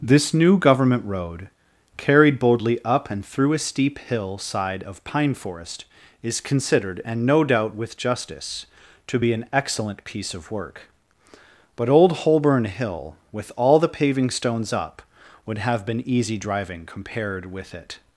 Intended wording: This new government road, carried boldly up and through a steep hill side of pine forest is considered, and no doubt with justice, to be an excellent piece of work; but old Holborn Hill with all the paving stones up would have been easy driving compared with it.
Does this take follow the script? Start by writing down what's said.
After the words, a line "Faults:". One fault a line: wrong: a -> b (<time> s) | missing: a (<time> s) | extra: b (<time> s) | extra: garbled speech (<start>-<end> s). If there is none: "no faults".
This new government road, carried boldly up and through a steep hill side of pine forest is considered, and no doubt with justice, to be an excellent piece of work; but old Holborn Hill with all the paving stones up would have been easy driving compared with it.
Faults:
no faults